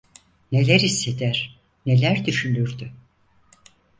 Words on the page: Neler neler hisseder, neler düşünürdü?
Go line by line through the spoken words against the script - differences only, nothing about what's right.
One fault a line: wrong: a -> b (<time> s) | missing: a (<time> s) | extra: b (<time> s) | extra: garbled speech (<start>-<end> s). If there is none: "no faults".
missing: neler (0.8 s)